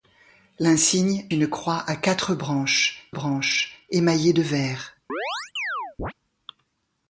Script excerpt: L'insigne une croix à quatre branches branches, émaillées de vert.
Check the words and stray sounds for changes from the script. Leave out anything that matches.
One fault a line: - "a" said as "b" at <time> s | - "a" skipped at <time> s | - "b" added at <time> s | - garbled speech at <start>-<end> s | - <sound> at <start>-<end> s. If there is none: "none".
- chirp at 5.1-6.1 s